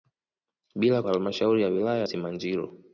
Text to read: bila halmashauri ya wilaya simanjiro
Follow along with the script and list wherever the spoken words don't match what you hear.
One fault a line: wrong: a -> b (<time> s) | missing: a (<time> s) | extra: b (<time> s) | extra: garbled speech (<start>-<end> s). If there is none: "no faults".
no faults